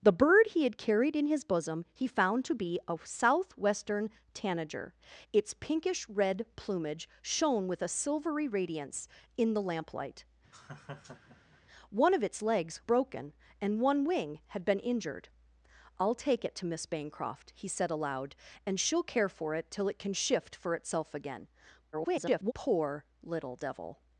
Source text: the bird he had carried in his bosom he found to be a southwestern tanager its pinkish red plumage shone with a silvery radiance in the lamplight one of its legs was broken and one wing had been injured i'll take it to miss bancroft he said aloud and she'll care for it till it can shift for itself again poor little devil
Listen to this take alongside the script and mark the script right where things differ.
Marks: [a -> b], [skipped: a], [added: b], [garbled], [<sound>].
the bird he had carried in his bosom he found to be a southwestern tanager its pinkish red plumage shone with a silvery radiance in the lamplight [laugh] one of its legs [skipped: was] broken and one wing had been injured i'll take it to miss bancroft he said aloud and she'll care for it till it can shift for itself again [garbled] poor little devil